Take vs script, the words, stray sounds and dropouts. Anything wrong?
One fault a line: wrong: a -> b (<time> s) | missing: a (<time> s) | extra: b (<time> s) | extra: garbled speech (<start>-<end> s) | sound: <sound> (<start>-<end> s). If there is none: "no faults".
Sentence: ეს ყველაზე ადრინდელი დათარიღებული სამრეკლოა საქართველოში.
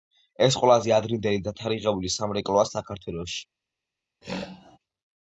sound: throat clearing (4.2-4.8 s)